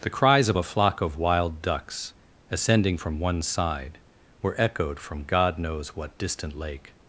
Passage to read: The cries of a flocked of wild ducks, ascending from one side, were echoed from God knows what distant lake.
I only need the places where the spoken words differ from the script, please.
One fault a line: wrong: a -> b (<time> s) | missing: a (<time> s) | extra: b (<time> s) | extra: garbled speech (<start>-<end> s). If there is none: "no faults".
wrong: flocked -> flock (0.6 s)